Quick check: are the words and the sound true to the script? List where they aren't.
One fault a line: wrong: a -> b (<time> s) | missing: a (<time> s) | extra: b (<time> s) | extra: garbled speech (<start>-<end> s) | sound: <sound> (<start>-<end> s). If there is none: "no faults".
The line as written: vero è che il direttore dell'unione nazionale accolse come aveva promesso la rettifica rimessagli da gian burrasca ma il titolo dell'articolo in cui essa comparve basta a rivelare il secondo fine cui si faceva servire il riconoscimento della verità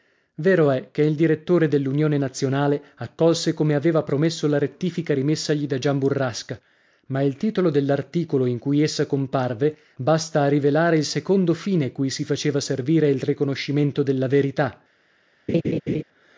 sound: laugh (15.5-16.0 s)